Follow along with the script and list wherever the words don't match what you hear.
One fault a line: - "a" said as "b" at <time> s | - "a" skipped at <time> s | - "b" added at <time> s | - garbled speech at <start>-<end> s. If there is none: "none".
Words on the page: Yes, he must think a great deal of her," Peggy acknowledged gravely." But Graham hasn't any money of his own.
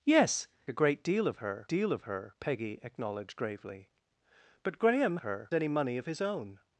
- "he must think a great" said as "a great deal of her" at 0.7 s
- "hasn't" said as "her" at 5.2 s